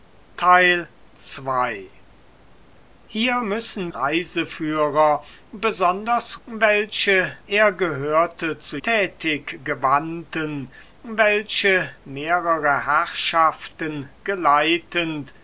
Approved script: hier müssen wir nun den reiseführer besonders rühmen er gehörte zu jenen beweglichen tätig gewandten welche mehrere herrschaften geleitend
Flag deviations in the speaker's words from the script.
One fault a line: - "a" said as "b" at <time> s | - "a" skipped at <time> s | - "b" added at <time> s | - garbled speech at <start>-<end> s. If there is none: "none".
- "wir nun den" skipped at 3.9 s
- "rühmen" said as "welche" at 6.5 s
- "jenen beweglichen" skipped at 8.8 s